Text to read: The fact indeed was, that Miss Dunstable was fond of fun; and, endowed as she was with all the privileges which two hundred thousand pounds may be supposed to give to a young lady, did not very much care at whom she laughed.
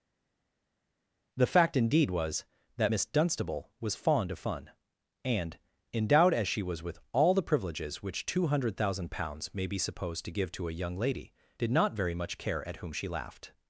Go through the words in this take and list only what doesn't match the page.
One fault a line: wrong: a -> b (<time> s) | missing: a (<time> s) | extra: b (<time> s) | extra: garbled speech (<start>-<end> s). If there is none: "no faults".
no faults